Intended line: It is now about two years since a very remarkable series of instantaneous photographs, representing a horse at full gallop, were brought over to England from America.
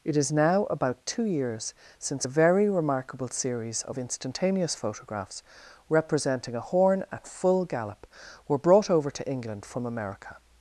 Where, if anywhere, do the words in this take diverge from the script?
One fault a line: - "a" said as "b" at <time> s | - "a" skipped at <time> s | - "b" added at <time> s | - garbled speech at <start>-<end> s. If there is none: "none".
- "horse" said as "horn" at 6.6 s